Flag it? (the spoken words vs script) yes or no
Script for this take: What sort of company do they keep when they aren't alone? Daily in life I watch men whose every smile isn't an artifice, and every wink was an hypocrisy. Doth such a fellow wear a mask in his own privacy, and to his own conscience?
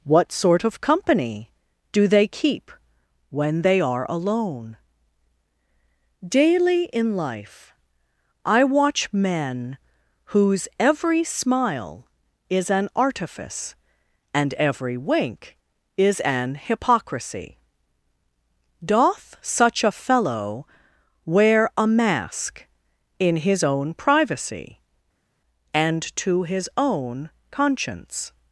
yes